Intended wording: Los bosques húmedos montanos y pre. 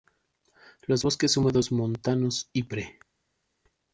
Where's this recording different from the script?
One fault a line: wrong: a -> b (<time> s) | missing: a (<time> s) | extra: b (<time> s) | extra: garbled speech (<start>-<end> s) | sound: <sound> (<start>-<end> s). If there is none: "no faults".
no faults